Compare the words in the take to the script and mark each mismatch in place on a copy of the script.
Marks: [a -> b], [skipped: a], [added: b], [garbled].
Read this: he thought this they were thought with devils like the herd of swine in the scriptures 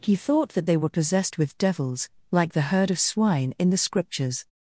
he thought [this -> that] they were [thought -> possessed] with devils like the herd of swine in the scriptures